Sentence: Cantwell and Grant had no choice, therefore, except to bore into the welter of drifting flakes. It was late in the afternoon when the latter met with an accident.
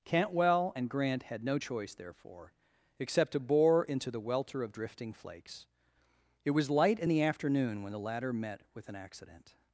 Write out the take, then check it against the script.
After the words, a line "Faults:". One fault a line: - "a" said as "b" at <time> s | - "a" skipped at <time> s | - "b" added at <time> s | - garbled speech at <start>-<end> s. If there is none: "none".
Cantwell and Grant had no choice, therefore, except to bore into the welter of drifting flakes. It was light in the afternoon when the latter met with an accident.
Faults:
- "late" said as "light" at 6.7 s